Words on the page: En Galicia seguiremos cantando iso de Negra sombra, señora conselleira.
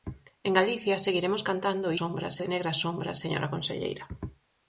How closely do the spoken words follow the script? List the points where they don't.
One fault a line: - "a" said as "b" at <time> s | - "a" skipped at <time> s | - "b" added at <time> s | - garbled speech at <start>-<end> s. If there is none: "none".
- "iso" said as "sombra" at 2.0 s